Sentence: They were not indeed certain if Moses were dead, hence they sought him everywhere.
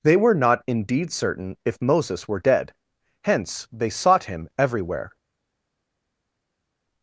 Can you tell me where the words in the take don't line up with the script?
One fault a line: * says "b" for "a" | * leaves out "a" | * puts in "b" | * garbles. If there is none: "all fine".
all fine